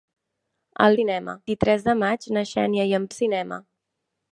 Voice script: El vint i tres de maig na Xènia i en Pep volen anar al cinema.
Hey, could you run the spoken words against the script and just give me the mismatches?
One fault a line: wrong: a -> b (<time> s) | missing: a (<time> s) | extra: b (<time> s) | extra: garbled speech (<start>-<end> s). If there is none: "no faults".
wrong: vint -> cinema (1.0 s)
missing: Pep volen anar (3.1 s)